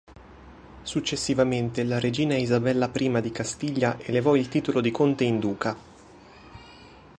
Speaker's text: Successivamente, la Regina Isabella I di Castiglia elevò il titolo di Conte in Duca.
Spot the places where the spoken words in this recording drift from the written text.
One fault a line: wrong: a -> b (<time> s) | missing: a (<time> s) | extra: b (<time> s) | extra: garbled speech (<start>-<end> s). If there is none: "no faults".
no faults